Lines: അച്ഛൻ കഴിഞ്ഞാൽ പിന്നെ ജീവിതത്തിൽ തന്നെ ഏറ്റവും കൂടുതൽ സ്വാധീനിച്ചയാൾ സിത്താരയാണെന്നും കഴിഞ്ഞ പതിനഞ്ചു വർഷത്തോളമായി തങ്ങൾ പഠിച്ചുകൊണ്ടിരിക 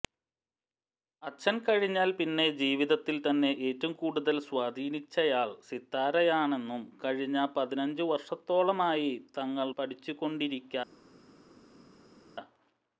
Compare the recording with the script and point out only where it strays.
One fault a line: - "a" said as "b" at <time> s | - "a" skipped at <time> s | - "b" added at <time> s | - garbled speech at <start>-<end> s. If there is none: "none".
none